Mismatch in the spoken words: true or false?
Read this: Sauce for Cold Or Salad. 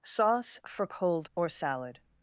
false